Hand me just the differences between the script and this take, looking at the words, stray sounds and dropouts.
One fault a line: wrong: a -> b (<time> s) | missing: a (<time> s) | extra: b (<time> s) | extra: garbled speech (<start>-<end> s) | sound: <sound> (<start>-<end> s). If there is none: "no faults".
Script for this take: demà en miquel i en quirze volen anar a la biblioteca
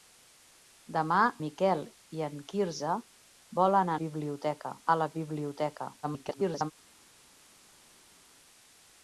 missing: en (1.2 s)
wrong: anar -> biblioteca (4.0 s)
extra: garbled speech (6.0-6.7 s)